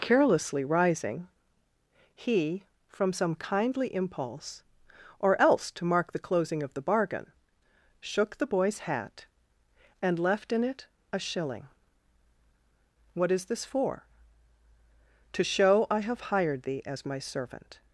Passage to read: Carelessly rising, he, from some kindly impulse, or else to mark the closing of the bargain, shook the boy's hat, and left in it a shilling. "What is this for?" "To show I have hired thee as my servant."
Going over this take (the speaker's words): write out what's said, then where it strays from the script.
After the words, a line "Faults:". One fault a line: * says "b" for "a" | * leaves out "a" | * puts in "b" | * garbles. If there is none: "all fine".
Carelessly rising, he, from some kindly impulse, or else to mark the closing of the bargain, shook the boy's hat, and left in it a shilling. "What is this for?" "To show I have hired thee as my servant."
Faults:
all fine